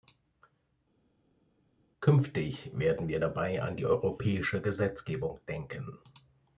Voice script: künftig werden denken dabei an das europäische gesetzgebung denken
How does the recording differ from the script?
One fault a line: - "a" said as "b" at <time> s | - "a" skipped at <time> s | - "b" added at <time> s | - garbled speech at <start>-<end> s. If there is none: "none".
- "denken" said as "wir" at 3.1 s
- "das" said as "die" at 3.8 s